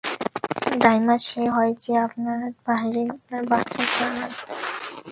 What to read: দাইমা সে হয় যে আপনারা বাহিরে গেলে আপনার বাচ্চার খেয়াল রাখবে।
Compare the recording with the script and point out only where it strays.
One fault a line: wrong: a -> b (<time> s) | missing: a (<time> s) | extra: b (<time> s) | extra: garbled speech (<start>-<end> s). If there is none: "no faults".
missing: গেলে (3.0 s)